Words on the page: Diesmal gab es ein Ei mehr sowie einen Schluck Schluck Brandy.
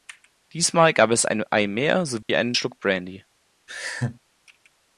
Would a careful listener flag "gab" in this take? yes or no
no